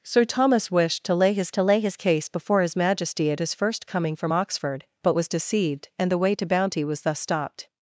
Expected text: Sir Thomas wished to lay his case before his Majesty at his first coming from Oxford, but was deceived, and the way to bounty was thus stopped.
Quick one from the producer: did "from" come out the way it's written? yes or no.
yes